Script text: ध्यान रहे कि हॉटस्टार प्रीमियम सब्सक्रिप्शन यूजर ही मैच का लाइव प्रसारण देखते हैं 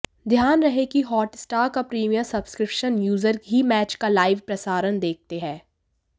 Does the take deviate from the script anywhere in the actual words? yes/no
yes